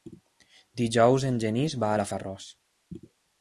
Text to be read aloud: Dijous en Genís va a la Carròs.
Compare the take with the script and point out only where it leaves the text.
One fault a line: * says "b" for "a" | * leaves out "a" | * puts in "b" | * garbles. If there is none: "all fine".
all fine